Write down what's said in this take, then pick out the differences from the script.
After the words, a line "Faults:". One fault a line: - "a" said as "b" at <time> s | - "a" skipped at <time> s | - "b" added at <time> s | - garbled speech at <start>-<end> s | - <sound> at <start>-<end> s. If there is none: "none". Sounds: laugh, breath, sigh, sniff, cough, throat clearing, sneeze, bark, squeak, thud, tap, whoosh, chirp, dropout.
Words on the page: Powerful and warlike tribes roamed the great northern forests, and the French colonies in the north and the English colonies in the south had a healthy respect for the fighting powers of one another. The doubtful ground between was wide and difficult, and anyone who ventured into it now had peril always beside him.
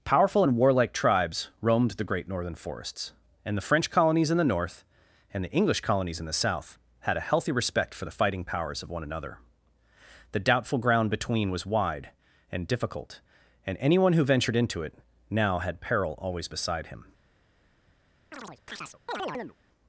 Powerful and warlike tribes roamed the great northern forests, and the French colonies in the north and the English colonies in the south had a healthy respect for the fighting powers of one another. The doubtful ground between was wide and difficult, and anyone who ventured into it now had peril always beside him.
Faults:
- chirp at 18.3-19.6 s